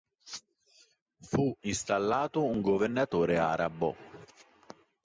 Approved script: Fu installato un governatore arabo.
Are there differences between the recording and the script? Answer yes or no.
no